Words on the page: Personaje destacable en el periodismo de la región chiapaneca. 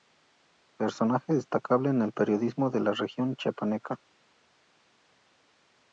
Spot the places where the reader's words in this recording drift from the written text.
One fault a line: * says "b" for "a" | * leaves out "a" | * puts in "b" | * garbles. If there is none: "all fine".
all fine